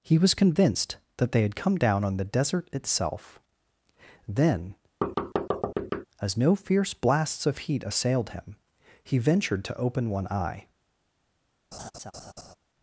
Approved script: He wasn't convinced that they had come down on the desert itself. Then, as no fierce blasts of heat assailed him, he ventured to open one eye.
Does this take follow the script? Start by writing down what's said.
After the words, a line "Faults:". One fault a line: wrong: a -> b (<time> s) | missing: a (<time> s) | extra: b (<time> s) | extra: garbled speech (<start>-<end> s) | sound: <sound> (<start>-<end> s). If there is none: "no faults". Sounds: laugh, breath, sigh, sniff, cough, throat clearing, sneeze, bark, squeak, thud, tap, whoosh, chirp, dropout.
He was convinced that they had come down on the desert itself. Then, as no fierce blasts of heat assailed him, he ventured to open one eye.
Faults:
wrong: wasn't -> was (0.2 s)
sound: thud (5.0-6.1 s)
sound: laugh (11.7-12.6 s)